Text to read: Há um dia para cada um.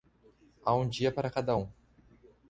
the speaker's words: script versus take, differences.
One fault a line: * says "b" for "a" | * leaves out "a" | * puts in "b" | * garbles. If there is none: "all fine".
all fine